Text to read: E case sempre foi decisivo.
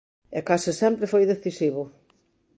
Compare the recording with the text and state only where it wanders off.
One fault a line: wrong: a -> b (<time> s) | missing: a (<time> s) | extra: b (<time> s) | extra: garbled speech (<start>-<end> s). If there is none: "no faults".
no faults